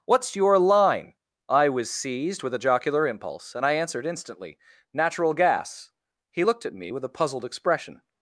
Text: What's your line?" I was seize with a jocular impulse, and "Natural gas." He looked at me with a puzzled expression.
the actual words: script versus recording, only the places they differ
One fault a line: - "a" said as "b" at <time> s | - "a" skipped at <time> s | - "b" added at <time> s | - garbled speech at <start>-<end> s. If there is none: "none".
- "seize" said as "seized" at 1.9 s
- "I answered instantly" added at 3.6 s